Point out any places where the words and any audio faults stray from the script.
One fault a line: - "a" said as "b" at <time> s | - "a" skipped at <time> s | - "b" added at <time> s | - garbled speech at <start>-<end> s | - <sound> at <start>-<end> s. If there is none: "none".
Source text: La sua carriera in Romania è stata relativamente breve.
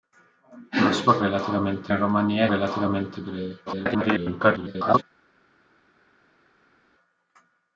- "carriera" said as "relativamente" at 1.2 s
- "stata" skipped at 2.5 s
- garbled speech at 3.7-5.0 s